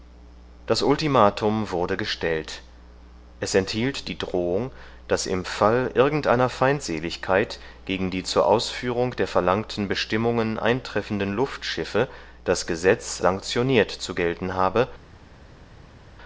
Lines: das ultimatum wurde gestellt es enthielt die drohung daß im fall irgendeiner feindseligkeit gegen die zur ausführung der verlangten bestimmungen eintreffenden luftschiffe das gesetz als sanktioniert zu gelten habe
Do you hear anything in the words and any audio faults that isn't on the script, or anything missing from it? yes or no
yes